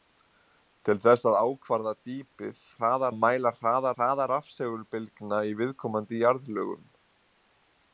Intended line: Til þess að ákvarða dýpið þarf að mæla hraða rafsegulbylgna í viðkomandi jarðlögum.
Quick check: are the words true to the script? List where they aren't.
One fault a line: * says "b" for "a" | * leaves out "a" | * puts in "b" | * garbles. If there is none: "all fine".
* says "hraða" for "þarf"
* puts in "hraða"